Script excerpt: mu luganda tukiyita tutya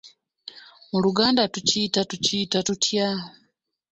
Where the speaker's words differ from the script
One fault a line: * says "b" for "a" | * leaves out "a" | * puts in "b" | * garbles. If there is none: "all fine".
* puts in "tukiyita"